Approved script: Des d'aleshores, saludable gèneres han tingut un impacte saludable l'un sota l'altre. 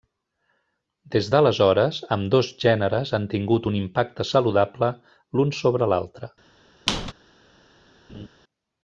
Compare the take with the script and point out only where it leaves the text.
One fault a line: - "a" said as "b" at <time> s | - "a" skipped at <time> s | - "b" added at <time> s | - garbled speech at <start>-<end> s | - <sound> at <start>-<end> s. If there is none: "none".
- "saludable" said as "ambdós" at 2.2 s
- "sota" said as "sobre" at 5.6 s
- squeak at 6.9-7.1 s
- laugh at 8.1-8.3 s